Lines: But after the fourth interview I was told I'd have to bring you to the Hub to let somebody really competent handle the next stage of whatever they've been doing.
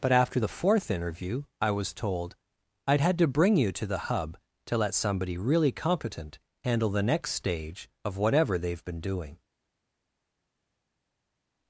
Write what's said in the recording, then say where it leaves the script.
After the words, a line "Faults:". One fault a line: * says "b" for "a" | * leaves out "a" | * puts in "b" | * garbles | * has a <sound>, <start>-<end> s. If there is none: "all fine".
But after the fourth interview I was told I'd had to bring you to the Hub to let somebody really competent handle the next stage of whatever they've been doing.
Faults:
* says "had" for "have"